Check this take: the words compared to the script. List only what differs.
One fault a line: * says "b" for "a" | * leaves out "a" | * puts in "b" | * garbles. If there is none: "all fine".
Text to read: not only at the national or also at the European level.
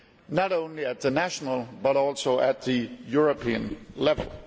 * says "but" for "or"